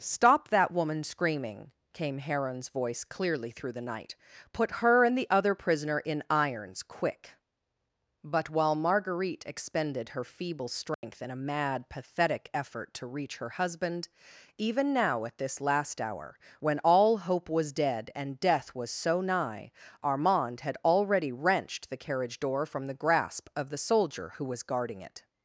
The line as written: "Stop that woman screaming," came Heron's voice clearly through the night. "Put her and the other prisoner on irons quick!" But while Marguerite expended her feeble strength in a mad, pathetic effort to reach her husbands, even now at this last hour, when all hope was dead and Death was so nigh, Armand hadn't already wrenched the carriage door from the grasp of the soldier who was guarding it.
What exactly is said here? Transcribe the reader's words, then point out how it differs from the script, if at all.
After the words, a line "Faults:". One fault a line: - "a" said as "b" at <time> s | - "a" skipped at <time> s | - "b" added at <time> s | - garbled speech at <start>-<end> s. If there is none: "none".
"Stop that woman screaming," came Heron's voice clearly through the night. "Put her and the other prisoner in irons quick!" But while Marguerite expended her feeble strength in a mad, pathetic effort to reach her husband, even now at this last hour, when all hope was dead and Death was so nigh, Armand had already wrenched the carriage door from the grasp of the soldier who was guarding it.
Faults:
- "on" said as "in" at 6.0 s
- "husbands" said as "husband" at 13.6 s
- "hadn't" said as "had" at 20.6 s